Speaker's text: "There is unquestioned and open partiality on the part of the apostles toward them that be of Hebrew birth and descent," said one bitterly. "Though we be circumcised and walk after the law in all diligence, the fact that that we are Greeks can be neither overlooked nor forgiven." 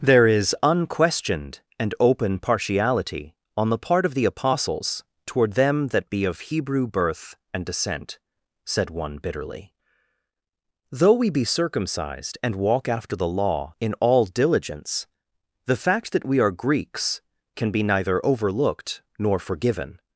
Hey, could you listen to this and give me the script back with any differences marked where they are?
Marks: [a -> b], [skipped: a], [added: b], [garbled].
"There is unquestioned and open partiality on the part of the apostles toward them that be of Hebrew birth and descent," said one bitterly. "Though we be circumcised and walk after the law in all diligence, the fact that [skipped: that] we are Greeks can be neither overlooked nor forgiven."